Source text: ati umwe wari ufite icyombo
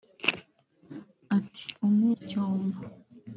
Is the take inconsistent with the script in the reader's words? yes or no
yes